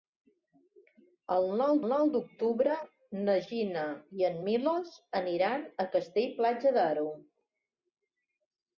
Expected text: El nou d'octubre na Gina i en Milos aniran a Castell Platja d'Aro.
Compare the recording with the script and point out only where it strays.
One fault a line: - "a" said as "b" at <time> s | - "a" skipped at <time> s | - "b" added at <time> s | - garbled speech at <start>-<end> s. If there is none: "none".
- "nou" added at 1.9 s